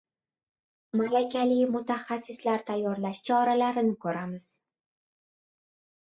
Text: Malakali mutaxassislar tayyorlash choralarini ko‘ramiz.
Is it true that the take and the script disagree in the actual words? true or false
false